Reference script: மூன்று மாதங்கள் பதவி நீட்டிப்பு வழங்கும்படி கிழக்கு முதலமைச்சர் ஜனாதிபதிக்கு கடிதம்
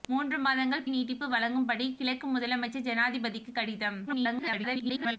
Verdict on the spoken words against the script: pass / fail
fail